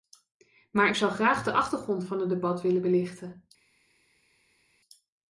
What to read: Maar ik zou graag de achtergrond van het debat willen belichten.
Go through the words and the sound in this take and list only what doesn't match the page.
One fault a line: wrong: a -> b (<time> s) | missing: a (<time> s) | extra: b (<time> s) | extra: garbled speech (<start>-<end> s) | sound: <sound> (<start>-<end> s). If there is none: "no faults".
no faults